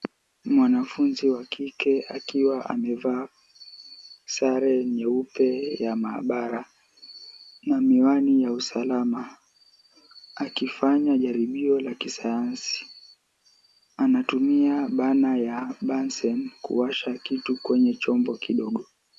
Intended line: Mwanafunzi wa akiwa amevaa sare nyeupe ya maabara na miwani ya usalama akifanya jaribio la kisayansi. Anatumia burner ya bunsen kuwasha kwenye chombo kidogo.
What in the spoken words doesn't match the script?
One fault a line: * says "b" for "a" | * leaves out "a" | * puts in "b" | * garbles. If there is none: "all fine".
* puts in "kike"
* puts in "kitu"